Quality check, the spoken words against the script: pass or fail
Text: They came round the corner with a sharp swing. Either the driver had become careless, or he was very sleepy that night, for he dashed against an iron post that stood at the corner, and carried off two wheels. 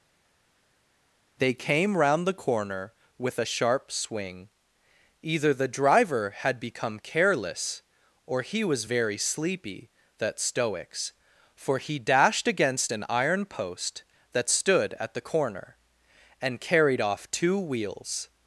fail